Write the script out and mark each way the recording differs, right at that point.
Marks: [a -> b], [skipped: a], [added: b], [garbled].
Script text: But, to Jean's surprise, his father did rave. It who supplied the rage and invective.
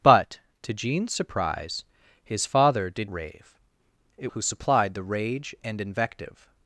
But, to Jean's surprise, his father did rave. It who supplied the rage and invective.